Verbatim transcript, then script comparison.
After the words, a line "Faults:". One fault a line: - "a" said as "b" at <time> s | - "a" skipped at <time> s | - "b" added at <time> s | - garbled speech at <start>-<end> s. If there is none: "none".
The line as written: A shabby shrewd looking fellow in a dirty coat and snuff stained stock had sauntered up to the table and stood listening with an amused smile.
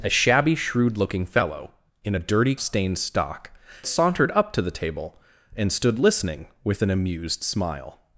A shabby shrewd looking fellow in a dirty stained stock sauntered up to the table and stood listening with an amused smile.
Faults:
- "coat and snuff" skipped at 2.5 s
- "had" skipped at 3.5 s